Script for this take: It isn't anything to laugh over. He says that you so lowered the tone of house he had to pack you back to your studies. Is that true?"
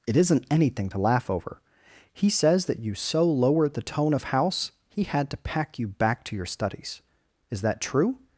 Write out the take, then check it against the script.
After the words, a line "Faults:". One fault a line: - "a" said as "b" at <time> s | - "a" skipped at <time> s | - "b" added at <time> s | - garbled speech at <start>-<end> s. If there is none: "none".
It isn't anything to laugh over. He says that you so lowered the tone of house he had to pack you back to your studies. Is that true?"
Faults:
none